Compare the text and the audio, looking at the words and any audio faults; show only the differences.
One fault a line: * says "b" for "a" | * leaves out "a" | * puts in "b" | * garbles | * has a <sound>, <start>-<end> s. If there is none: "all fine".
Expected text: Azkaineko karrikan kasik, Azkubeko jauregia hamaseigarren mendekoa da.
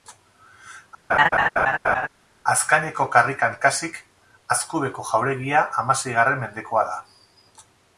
* has a laugh, 1.1-2.1 s